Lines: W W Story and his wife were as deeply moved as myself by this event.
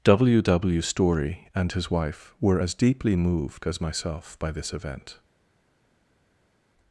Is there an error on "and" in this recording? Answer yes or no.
no